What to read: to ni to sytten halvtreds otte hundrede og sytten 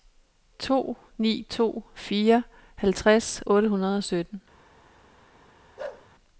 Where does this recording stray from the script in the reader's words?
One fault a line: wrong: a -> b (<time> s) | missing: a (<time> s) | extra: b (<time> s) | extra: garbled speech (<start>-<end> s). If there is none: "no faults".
wrong: sytten -> fire (1.9 s)